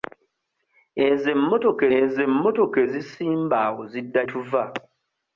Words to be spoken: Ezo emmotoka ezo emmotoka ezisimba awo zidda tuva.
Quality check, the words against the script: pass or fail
pass